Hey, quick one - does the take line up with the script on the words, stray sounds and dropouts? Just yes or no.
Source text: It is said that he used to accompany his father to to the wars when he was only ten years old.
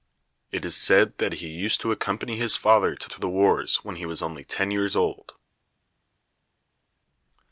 yes